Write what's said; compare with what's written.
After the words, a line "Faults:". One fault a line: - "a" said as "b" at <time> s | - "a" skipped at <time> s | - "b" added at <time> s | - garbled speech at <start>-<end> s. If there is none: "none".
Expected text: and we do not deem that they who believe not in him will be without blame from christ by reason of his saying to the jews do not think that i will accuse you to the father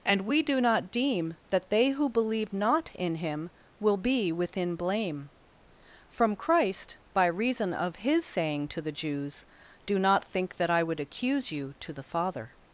and we do not deem that they who believe not in him will be within blame from christ by reason of his saying to the jews do not think that i would accuse you to the father
Faults:
- "without" said as "within" at 4.3 s
- "will" said as "would" at 10.8 s